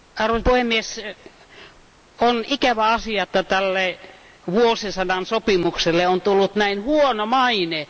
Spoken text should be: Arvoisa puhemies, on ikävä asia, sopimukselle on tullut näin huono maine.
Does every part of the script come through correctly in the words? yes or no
no